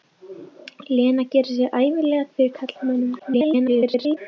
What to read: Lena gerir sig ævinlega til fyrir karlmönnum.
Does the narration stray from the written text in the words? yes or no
yes